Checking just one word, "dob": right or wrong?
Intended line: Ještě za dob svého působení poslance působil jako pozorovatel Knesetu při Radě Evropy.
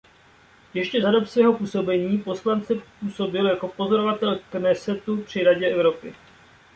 right